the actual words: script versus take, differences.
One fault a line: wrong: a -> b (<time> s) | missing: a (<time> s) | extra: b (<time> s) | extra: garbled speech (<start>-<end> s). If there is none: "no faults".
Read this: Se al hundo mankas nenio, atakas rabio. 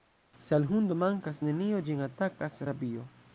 extra: ĝin (1.9 s)